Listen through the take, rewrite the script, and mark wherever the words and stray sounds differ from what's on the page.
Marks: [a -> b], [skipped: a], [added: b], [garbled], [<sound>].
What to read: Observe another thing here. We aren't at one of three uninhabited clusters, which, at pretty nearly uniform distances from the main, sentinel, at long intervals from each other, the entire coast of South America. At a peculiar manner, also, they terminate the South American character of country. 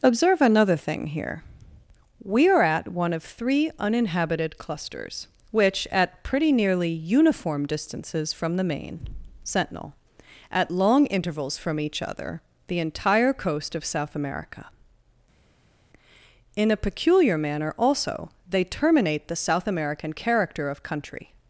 Observe another thing here. We [aren't -> are] at one of three uninhabited clusters, which, at pretty nearly uniform distances from the main, sentinel, at long intervals from each other, the entire coast of South America. [At -> In] a peculiar manner, also, they terminate the South American character of country.